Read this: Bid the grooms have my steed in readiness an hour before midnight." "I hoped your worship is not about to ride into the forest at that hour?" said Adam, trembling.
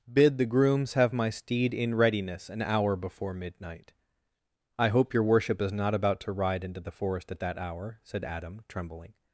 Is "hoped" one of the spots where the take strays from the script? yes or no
yes